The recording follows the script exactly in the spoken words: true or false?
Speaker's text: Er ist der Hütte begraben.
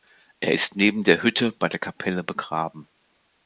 false